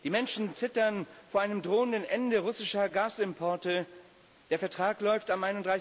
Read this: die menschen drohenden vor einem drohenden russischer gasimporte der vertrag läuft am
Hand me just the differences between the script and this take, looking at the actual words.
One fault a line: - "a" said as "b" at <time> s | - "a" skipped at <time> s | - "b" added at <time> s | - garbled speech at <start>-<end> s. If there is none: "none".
- "drohenden" said as "zittern" at 0.6 s
- "ende" added at 2.0 s